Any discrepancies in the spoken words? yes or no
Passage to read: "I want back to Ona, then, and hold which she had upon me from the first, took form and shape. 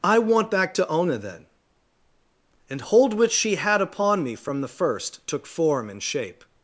no